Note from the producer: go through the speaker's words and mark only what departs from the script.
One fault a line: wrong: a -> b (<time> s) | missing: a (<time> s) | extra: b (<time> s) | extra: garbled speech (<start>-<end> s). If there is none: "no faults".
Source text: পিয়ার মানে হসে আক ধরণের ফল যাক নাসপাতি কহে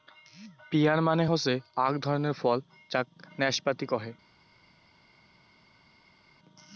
no faults